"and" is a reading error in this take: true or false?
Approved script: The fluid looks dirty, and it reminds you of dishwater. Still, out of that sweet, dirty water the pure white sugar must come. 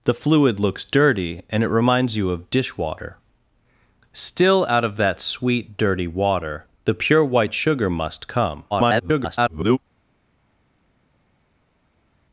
false